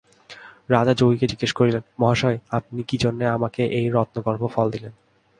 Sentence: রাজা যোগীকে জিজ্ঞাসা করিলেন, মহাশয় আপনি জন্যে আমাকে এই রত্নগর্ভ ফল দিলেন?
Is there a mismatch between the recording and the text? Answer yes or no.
yes